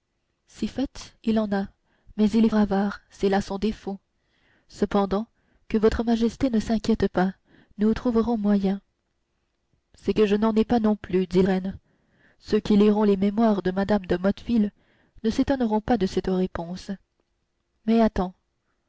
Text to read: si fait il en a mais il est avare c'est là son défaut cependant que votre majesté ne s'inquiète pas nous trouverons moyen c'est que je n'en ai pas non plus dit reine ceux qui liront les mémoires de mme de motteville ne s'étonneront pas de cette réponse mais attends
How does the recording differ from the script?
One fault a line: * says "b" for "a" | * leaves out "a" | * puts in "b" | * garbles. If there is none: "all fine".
all fine